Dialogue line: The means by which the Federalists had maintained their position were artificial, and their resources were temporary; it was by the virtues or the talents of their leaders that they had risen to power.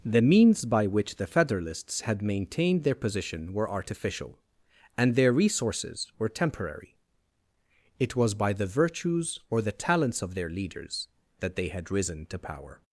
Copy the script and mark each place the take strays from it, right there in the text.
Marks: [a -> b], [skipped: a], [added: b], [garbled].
The means by which the Federalists had maintained their position were artificial, and their resources were temporary; it was by the virtues or the talents of their leaders that they had risen to power.